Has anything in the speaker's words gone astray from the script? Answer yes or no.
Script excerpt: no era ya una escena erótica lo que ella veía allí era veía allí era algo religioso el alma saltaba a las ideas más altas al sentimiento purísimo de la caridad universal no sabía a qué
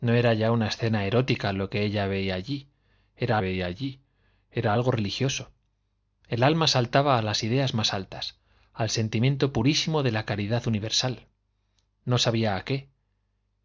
no